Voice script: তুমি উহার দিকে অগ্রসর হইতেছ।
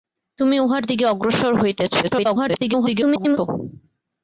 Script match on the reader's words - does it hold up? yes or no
no